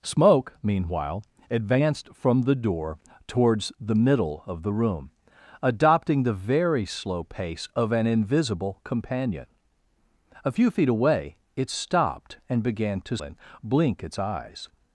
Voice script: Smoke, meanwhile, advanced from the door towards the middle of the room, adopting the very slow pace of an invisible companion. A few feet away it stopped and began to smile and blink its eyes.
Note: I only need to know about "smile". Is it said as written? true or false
false